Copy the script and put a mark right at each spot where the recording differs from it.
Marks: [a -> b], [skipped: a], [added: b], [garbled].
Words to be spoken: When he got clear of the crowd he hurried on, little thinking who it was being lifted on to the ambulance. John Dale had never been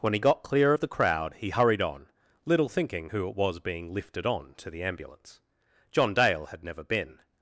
When he got clear of the crowd he hurried on, little thinking who it was being lifted on to the ambulance. John Dale had never been